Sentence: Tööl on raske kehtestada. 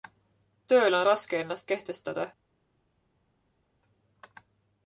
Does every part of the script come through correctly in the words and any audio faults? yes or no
no